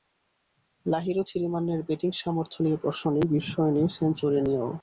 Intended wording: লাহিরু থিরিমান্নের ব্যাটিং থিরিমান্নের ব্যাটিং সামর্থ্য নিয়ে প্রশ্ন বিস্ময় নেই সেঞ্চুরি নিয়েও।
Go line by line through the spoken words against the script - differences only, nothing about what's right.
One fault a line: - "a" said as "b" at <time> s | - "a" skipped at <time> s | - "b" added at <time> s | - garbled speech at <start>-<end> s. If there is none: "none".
- "থিরিমান্নের ব্যাটিং" skipped at 2.1 s
- "নেই" added at 3.1 s